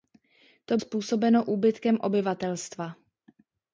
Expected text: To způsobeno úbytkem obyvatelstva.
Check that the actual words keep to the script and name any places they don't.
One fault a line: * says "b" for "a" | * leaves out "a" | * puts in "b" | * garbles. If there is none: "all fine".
all fine